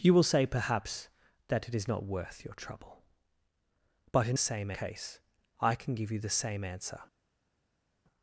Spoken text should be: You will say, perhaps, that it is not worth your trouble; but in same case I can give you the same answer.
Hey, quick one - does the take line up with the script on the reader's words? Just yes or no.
yes